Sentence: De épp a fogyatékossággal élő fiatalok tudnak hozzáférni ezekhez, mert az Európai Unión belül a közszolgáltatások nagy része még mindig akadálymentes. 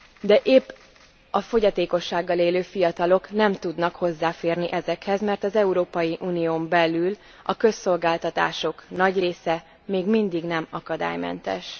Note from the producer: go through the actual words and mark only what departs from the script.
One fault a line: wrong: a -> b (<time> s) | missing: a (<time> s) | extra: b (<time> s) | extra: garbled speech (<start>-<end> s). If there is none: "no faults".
extra: nem (3.3 s)
extra: nem (10.4 s)